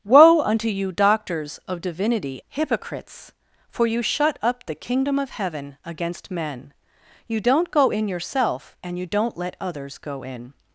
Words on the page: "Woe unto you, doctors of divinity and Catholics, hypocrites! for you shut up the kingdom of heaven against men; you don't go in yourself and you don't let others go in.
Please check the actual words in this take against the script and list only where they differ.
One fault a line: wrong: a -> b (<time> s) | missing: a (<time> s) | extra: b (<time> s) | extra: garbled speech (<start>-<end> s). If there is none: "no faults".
missing: and Catholics (2.4 s)